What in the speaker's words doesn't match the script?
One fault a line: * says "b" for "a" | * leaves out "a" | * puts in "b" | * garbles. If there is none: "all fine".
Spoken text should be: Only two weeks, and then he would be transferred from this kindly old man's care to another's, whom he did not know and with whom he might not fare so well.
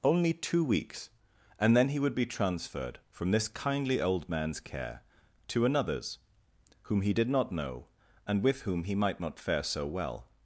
all fine